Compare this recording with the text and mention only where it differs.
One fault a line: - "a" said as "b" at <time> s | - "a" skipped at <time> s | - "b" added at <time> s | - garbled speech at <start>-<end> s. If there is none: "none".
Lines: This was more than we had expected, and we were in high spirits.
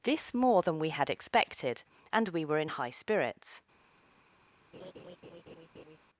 - "was" skipped at 0.3 s